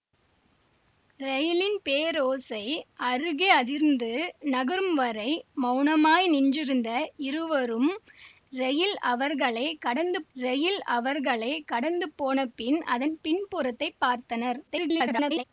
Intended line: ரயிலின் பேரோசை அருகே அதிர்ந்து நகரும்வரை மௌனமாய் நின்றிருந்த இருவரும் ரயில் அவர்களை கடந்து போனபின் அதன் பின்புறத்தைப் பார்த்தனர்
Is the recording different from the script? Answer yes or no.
yes